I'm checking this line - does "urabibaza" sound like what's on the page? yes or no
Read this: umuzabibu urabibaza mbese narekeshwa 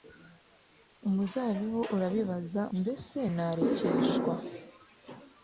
yes